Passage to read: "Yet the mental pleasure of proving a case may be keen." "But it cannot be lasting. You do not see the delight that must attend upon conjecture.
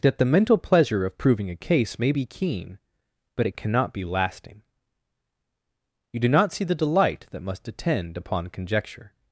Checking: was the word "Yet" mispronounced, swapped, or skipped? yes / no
yes